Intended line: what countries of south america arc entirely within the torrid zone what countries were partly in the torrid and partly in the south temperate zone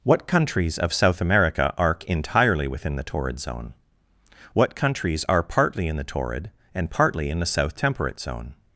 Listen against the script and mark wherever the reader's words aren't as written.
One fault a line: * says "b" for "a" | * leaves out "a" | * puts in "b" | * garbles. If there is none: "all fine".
* says "are" for "were"